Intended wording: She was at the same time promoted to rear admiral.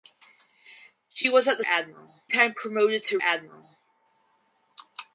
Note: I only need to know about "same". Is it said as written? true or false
false